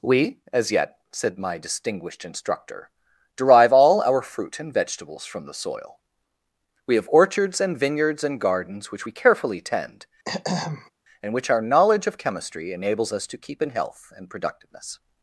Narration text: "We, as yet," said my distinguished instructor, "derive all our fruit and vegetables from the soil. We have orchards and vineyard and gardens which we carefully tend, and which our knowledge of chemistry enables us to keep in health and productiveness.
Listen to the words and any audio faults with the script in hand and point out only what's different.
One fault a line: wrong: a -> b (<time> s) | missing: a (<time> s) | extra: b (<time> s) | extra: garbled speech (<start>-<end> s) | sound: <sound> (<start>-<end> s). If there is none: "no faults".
wrong: vineyard -> vineyards (7.8 s)
sound: throat clearing (10.3-10.9 s)